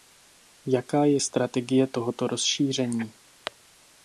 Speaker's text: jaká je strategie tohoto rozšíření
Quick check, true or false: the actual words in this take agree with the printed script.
true